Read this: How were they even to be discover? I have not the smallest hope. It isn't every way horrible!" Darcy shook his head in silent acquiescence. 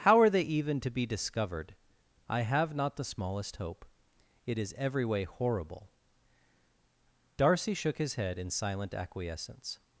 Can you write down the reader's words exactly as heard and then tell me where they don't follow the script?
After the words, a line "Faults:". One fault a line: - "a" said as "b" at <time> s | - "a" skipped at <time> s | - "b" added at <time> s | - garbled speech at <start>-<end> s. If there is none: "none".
How are they even to be discovered? I have not the smallest hope. It is every way horrible!" Darcy shook his head in silent acquiescence.
Faults:
- "were" said as "are" at 0.2 s
- "discover" said as "discovered" at 1.1 s
- "isn't" said as "is" at 4.6 s